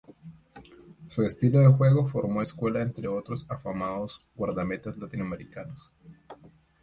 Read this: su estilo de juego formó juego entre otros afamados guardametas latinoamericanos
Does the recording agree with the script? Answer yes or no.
no